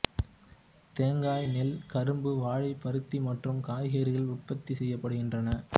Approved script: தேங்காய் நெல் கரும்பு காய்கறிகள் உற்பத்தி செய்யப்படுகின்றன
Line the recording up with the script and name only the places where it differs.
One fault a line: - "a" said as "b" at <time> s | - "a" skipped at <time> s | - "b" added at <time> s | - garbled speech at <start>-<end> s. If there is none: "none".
- "வாழை பருத்தி மற்றும்" added at 2.4 s